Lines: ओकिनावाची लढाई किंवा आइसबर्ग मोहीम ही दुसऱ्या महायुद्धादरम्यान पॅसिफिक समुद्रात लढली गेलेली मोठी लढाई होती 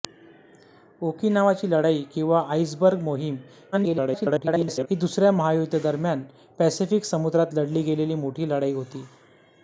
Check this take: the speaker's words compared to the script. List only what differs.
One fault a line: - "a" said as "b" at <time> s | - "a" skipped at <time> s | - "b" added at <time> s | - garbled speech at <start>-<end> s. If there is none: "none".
- garbled speech at 3.7-4.9 s